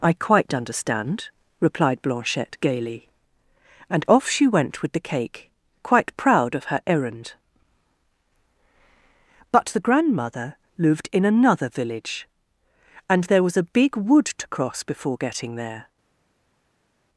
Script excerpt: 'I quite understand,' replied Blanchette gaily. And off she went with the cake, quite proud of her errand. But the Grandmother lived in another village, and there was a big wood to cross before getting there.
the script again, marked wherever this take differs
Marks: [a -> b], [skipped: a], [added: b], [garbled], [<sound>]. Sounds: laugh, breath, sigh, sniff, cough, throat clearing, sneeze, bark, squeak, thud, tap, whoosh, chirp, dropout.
'I quite understand,' replied Blanchette gaily. And off she went with the cake, quite proud of her errand. But the Grandmother lived in another village, and there was a big wood to cross before getting there.